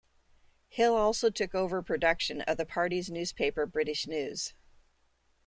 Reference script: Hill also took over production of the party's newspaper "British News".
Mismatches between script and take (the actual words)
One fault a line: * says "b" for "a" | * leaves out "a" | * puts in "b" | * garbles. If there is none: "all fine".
all fine